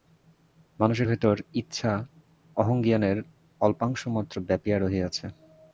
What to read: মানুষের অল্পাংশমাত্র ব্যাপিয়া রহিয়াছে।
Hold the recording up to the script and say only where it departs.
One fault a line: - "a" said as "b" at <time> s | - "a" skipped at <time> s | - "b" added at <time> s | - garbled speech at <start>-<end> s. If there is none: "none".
- "ভিতর ইচ্ছা অহংজ্ঞানের" added at 1.1 s